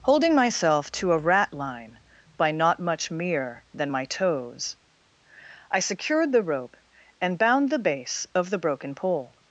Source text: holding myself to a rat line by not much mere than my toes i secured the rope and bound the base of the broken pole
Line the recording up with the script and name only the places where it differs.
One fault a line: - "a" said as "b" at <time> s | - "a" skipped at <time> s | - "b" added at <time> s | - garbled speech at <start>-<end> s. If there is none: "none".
none